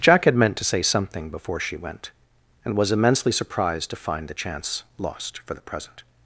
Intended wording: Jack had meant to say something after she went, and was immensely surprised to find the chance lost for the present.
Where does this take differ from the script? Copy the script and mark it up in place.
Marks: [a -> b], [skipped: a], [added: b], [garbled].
Jack had meant to say something [after -> before] she went, and was immensely surprised to find the chance lost for the present.